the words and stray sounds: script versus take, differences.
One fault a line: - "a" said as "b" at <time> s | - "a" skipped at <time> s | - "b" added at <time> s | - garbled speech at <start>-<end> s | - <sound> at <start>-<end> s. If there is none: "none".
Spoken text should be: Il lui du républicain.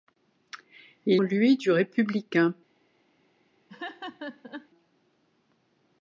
- laugh at 3.7-4.7 s